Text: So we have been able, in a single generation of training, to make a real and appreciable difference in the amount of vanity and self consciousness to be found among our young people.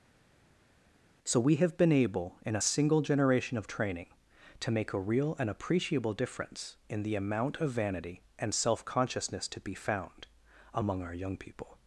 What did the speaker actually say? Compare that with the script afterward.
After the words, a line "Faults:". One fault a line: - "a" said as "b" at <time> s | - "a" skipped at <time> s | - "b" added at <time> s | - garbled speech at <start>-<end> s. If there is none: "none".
So we have been able, in a single generation of training, to make a real and appreciable difference in the amount of vanity and self consciousness to be found among our young people.
Faults:
none